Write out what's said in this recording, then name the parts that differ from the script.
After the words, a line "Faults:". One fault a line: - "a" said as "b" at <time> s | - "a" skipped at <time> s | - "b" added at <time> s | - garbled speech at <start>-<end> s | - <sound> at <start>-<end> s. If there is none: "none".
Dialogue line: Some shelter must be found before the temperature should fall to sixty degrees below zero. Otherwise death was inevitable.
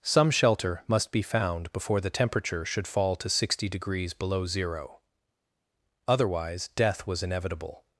Some shelter must be found before the temperature should fall to sixty degrees below zero. Otherwise death was inevitable.
Faults:
none